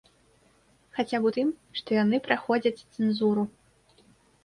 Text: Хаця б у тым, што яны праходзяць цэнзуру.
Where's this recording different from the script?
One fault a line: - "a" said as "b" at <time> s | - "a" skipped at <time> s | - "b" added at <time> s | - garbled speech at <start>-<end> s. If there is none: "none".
none